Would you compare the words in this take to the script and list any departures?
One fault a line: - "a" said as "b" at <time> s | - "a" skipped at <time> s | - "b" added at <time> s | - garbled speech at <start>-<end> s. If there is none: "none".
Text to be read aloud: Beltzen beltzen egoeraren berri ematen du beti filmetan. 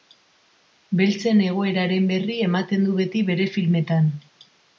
- "beltzen" skipped at 1.4 s
- "bere" added at 3.3 s